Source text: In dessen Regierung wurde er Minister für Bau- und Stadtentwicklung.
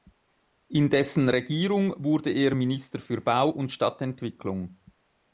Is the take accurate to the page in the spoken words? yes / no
yes